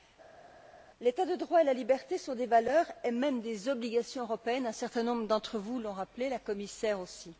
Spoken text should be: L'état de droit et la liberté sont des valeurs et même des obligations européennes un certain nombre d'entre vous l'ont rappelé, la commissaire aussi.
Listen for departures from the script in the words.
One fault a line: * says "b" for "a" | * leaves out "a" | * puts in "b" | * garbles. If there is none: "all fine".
all fine